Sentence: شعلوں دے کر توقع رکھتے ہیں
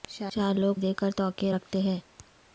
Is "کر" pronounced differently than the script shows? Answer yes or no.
no